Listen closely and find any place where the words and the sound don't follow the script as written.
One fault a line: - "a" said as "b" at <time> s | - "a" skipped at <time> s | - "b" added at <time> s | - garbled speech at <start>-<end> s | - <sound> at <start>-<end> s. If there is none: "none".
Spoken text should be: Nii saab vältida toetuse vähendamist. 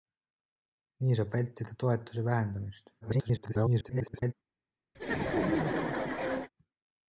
- garbled speech at 3.0-4.3 s
- laugh at 4.9-6.5 s